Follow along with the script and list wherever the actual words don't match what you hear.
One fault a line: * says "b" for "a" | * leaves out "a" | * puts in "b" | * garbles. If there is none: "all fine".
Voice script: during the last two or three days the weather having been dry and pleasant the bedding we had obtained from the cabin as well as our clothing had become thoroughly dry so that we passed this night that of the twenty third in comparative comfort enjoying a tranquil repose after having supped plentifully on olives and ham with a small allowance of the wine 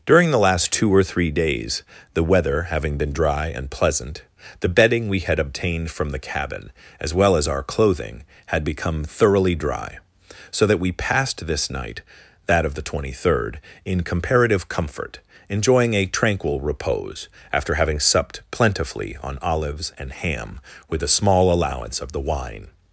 all fine